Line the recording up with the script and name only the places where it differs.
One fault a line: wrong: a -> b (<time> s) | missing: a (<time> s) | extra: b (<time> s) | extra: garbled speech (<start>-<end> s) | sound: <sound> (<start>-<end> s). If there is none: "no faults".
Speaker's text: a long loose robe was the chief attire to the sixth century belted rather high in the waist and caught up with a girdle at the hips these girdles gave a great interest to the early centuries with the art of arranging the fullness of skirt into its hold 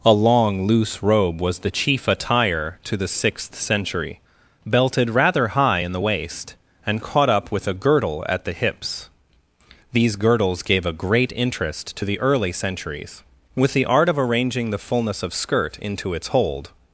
no faults